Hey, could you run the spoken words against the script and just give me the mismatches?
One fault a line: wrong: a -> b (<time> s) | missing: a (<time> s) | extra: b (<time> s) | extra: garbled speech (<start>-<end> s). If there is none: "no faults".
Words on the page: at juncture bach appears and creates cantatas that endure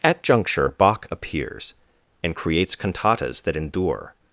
no faults